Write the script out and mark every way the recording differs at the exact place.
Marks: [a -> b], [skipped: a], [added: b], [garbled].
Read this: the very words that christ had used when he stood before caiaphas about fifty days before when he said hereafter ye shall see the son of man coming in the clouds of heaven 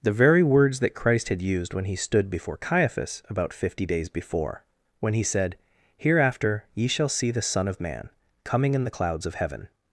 the very words that christ had used when he stood before caiaphas about fifty days before when he said hereafter ye shall see the son of man coming in the clouds of heaven